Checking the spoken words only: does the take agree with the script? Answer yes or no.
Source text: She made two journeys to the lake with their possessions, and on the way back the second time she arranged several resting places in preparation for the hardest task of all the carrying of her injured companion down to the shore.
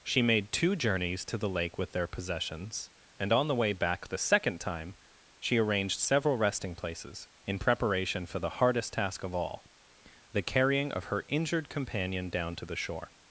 yes